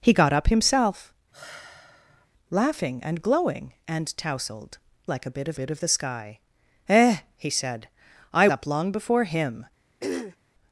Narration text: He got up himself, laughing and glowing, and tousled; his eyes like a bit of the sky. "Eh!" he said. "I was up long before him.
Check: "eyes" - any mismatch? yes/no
yes